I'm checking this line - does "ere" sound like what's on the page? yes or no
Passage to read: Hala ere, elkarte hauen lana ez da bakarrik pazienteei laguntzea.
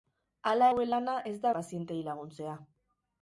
no